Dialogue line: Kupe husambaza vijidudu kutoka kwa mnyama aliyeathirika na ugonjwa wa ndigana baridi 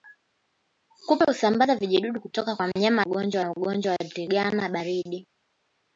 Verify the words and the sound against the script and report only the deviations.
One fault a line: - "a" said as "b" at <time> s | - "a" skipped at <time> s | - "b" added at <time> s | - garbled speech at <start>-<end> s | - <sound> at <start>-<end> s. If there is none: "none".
- "aliyeathirika" said as "ugonjwa" at 3.0 s